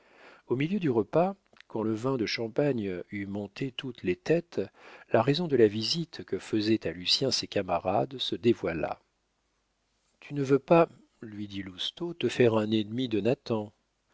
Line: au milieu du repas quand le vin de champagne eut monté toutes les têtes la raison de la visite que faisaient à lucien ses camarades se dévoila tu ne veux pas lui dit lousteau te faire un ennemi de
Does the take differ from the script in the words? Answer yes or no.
no